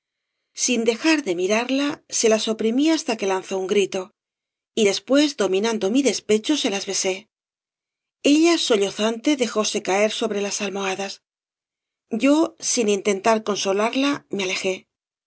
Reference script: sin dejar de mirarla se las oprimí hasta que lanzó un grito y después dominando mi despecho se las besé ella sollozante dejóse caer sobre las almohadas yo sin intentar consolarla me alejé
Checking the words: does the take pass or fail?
pass